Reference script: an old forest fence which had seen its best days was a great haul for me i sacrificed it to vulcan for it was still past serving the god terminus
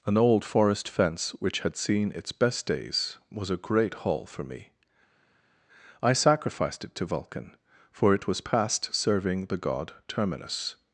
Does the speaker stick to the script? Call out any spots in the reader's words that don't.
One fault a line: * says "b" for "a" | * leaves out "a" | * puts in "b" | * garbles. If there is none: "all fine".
* leaves out "still"